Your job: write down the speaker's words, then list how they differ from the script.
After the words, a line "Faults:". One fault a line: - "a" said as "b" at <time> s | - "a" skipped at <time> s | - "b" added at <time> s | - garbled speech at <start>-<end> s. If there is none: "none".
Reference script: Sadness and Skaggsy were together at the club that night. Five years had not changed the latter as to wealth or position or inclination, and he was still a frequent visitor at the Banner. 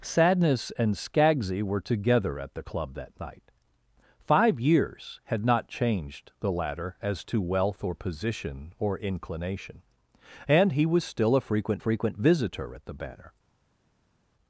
Sadness and Skaggsy were together at the club that night. Five years had not changed the latter as to wealth or position or inclination, and he was still a frequent frequent visitor at the Banner.
Faults:
- "frequent" added at 11.8 s